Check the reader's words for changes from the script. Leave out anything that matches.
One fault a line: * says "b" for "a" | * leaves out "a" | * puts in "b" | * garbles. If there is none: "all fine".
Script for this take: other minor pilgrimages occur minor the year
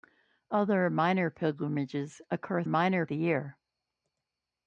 all fine